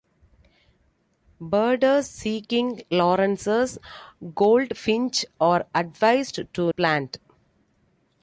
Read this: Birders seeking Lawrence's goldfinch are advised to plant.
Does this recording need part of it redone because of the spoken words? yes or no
no